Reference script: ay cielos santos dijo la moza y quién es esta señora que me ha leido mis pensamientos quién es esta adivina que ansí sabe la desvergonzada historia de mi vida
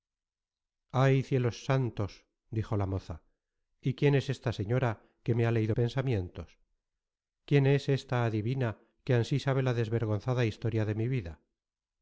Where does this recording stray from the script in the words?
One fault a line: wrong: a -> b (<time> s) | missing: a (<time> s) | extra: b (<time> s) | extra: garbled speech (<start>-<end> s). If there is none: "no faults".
missing: mis (5.8 s)